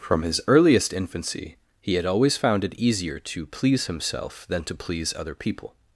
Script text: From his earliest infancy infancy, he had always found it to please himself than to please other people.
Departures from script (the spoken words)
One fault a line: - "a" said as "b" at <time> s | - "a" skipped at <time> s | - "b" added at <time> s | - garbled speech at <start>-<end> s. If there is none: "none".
- "infancy" skipped at 1.6 s
- "easier" added at 2.7 s